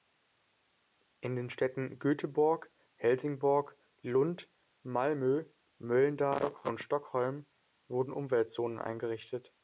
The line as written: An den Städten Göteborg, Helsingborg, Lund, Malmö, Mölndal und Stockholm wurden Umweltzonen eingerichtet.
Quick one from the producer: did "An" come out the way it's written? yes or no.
no